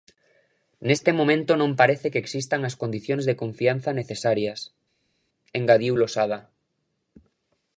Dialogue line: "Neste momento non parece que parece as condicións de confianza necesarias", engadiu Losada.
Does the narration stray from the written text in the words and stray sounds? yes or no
yes